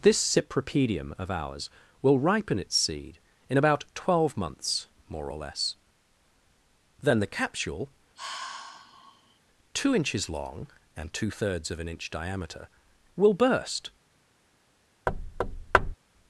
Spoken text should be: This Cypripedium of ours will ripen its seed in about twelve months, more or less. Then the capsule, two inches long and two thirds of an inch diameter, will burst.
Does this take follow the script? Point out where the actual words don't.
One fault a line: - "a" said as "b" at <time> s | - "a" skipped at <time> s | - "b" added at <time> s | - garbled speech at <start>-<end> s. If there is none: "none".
none